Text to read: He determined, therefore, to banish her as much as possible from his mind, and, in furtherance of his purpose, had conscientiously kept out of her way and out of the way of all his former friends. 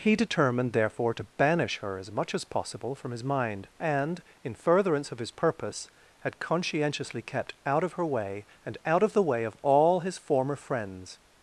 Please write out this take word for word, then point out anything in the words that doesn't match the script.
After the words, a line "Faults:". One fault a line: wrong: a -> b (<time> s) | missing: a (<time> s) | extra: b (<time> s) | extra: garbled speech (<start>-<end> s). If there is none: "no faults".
He determined, therefore, to banish her as much as possible from his mind, and, in furtherance of his purpose, had conscientiously kept out of her way and out of the way of all his former friends.
Faults:
no faults